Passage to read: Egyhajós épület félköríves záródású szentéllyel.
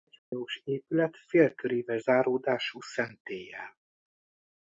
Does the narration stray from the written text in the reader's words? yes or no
no